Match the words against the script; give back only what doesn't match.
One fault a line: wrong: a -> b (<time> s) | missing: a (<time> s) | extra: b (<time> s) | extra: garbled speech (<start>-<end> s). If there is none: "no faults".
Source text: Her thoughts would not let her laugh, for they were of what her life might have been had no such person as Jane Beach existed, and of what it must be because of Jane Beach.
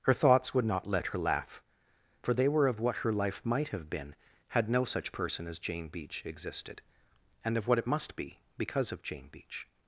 no faults